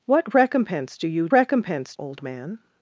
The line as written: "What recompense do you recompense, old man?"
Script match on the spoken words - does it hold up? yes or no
yes